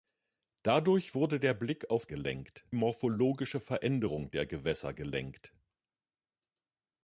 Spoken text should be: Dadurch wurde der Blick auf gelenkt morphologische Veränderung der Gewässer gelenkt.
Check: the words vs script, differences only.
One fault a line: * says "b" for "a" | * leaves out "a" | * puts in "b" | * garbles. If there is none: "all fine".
all fine